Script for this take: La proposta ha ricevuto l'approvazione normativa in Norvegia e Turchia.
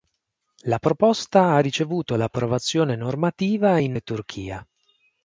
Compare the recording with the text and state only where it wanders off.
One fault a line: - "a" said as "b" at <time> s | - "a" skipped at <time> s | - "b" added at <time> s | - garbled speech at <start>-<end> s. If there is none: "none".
- "Norvegia" skipped at 4.0 s